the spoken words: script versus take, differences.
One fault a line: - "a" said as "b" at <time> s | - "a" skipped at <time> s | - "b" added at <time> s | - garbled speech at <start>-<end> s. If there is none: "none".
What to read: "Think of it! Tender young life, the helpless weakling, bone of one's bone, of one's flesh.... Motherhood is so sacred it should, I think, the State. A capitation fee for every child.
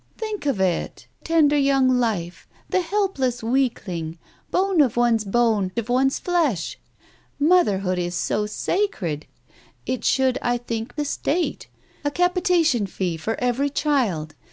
none